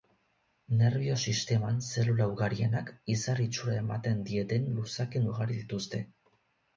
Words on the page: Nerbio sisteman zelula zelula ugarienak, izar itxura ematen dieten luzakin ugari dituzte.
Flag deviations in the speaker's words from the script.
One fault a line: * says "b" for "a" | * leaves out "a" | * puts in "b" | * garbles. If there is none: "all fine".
* leaves out "zelula"